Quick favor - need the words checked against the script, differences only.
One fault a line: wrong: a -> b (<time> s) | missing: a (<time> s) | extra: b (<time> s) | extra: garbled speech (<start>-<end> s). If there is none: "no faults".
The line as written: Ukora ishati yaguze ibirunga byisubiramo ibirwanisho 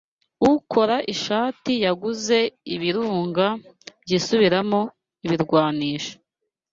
no faults